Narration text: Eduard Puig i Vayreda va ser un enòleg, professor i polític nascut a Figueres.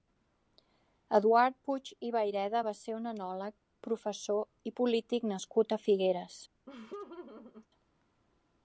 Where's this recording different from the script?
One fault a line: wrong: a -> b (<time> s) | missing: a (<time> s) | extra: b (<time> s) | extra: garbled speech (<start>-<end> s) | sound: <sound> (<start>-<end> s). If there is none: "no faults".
sound: laugh (6.7-7.7 s)